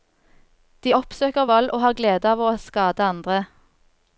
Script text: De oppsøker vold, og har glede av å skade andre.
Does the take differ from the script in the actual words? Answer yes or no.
no